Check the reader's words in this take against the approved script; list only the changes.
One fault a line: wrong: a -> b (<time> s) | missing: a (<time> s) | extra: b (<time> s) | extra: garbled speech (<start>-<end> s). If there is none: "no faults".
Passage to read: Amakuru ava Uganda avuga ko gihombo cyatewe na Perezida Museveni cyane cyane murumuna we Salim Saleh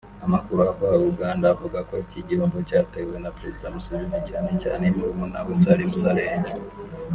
extra: iki (2.0 s)